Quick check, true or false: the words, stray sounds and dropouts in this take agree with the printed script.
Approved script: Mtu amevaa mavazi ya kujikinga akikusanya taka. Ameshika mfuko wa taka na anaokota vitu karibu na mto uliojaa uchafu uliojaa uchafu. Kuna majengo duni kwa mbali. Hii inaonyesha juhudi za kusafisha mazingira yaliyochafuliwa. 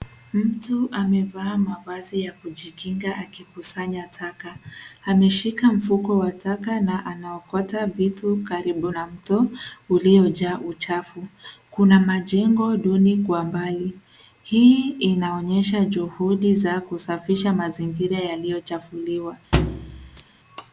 false